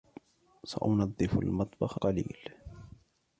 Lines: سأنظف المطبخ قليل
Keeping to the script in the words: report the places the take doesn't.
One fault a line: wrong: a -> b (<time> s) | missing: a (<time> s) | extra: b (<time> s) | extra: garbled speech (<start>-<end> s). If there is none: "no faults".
no faults